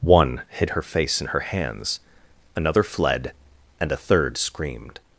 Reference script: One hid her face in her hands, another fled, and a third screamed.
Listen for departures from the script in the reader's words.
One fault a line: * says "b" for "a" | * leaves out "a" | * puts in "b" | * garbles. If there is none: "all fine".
all fine